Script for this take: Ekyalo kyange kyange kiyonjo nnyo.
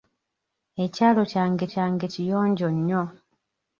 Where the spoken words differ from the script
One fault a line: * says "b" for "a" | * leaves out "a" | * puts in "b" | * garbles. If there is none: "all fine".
all fine